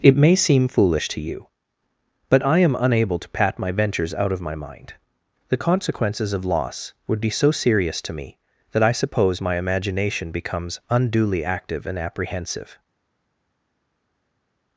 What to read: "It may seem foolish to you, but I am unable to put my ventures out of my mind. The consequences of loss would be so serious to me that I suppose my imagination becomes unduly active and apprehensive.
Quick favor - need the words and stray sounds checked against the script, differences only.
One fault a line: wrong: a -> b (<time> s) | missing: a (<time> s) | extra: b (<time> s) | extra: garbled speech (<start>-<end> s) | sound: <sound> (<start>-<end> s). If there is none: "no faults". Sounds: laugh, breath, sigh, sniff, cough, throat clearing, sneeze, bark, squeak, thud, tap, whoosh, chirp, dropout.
wrong: put -> pat (3.3 s)